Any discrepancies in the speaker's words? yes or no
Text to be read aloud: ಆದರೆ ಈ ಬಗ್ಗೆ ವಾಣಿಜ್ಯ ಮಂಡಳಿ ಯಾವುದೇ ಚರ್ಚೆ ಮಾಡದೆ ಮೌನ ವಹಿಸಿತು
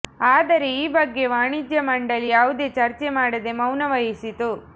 no